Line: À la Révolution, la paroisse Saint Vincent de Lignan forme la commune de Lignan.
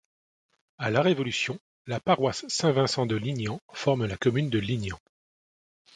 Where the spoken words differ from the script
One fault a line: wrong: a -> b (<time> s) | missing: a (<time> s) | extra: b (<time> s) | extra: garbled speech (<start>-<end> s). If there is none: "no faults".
no faults